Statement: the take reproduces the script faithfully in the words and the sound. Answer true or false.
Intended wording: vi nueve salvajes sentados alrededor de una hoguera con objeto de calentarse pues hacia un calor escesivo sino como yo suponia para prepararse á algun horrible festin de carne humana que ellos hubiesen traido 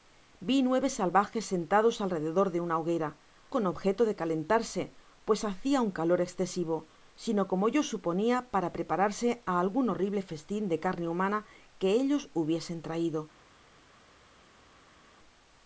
true